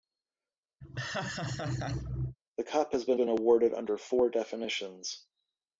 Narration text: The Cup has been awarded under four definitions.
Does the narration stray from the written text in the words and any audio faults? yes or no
yes